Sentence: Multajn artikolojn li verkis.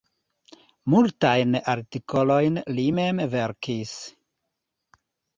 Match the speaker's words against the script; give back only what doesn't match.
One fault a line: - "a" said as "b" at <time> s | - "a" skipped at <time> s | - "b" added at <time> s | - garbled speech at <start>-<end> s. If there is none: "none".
- "mem" added at 3.0 s